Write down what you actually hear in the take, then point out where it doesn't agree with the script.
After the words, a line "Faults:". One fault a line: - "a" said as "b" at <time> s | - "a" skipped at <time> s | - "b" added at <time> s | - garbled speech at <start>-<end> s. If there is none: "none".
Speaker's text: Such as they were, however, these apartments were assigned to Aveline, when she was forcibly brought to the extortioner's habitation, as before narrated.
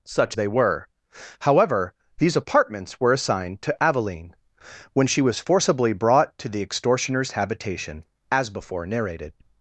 Such they were, however, these apartments were assigned to Aveline, when she was forcibly brought to the extortioner's habitation, as before narrated.
Faults:
- "as" skipped at 0.3 s